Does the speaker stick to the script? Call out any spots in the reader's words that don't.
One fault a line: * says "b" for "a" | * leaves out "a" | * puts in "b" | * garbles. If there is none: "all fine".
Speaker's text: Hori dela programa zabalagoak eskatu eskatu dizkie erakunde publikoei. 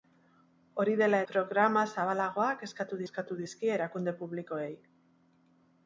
all fine